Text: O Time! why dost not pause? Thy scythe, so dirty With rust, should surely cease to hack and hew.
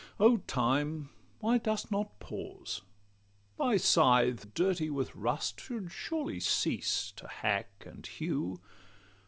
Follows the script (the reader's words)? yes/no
no